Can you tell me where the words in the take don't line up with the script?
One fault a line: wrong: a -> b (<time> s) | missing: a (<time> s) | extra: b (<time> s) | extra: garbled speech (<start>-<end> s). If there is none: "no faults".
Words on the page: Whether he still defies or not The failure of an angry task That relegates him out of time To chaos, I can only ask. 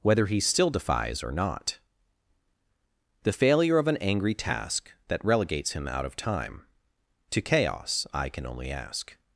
no faults